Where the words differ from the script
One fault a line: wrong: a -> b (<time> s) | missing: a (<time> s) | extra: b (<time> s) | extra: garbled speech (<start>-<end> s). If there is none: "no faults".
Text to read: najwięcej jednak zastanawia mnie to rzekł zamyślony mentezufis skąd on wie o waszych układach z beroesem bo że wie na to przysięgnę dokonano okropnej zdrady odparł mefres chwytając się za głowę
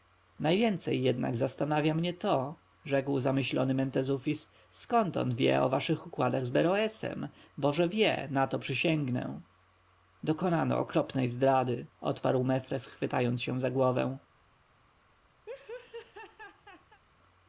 no faults